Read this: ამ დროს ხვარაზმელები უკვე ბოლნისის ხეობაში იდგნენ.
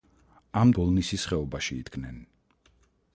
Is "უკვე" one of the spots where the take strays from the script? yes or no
yes